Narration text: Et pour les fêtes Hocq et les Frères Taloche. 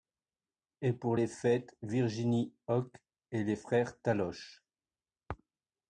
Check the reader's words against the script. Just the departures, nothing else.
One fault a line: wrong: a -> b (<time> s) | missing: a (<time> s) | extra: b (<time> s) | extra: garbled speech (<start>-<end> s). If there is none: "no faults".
extra: Virginie (1.8 s)